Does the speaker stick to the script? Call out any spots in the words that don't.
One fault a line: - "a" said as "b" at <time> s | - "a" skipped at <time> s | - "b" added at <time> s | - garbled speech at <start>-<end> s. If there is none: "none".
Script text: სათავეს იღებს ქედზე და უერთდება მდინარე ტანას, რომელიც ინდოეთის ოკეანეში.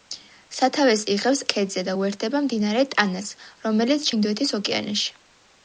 none